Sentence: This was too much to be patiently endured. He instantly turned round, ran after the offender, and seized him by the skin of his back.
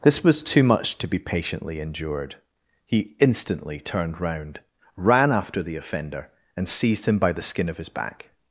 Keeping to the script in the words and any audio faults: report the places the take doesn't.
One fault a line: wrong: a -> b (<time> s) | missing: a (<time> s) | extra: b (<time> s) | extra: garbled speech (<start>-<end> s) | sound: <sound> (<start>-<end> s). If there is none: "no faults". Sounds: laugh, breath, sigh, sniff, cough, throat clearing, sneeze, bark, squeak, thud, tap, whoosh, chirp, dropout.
no faults